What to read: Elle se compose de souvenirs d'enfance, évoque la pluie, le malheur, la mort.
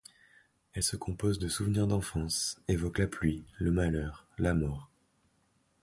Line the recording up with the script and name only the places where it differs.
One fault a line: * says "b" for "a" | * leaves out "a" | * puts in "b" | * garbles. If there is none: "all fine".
all fine